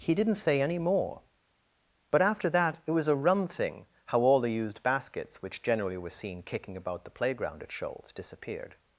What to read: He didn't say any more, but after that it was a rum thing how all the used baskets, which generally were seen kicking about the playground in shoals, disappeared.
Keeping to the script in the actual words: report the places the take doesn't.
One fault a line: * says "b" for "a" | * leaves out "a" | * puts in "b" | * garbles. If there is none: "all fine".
* says "at" for "in"